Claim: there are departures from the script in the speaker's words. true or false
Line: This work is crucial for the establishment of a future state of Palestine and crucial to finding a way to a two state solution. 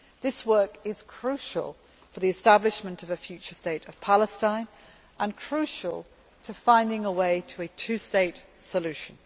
false